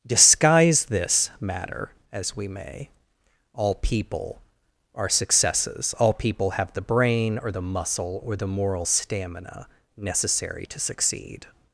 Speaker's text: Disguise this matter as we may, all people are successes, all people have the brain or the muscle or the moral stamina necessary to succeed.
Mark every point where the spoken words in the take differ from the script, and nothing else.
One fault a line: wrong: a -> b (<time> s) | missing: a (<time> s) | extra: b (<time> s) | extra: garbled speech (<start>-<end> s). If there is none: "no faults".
no faults